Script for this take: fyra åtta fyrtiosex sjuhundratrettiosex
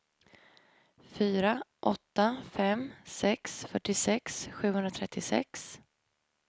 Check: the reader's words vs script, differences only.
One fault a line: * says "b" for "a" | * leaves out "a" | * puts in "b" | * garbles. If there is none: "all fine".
* puts in "fem sex"